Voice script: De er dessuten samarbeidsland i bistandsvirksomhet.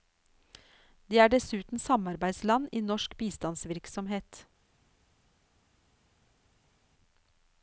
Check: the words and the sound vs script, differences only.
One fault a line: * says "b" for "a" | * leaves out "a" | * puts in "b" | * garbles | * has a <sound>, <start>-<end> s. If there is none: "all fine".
* puts in "norsk"